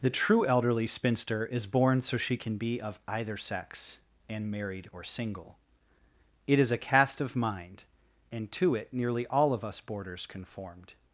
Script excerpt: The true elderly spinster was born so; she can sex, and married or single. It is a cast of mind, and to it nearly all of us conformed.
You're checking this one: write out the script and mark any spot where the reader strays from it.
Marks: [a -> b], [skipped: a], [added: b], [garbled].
The true elderly spinster [was -> is] born so; she can [added: be of either] sex, and married or single. It is a cast of mind, and to it nearly all of us [added: boarders] conformed.